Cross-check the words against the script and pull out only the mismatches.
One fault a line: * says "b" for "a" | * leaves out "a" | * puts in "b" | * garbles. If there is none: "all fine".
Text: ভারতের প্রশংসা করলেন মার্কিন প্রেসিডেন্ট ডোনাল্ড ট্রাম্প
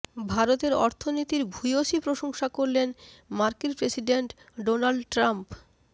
* puts in "অর্থনীতির ভূয়সী"